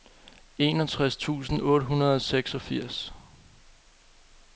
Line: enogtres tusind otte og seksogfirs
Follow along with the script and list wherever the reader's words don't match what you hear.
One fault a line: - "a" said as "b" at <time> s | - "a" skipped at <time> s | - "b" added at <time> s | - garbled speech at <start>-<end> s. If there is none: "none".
- "hundrede" added at 1.9 s